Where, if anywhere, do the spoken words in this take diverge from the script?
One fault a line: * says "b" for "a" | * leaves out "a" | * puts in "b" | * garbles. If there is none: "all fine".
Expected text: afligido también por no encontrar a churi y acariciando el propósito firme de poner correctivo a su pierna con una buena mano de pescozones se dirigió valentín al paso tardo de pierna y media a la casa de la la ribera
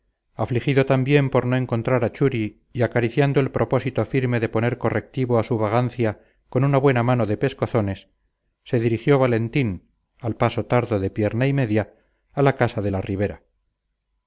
* says "vagancia" for "pierna"
* leaves out "la"